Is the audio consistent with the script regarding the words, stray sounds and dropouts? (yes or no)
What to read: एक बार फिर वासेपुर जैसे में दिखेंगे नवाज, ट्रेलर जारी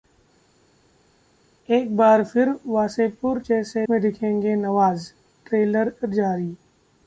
yes